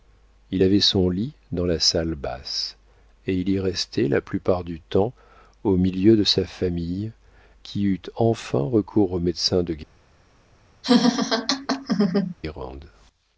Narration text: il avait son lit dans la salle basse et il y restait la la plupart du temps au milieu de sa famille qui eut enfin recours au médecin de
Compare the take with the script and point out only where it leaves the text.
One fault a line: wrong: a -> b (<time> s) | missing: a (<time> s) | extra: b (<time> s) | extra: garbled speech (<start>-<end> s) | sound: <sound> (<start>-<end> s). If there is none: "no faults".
missing: la (4.2 s)
sound: laugh (10.8-12.3 s)